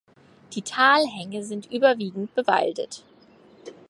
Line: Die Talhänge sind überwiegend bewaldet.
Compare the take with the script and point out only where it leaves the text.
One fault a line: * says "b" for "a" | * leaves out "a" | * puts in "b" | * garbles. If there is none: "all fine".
all fine